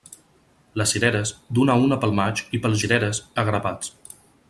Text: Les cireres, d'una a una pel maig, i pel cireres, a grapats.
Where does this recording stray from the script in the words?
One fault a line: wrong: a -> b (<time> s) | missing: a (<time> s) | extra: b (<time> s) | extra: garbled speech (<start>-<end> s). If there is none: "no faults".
no faults